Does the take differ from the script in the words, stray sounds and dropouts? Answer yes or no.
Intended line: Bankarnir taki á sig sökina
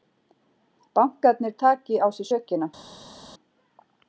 no